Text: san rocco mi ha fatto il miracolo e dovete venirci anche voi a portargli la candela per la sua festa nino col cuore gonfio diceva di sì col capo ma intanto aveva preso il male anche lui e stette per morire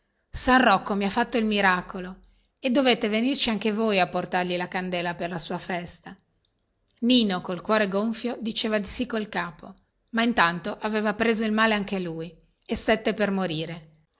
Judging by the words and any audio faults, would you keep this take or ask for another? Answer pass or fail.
pass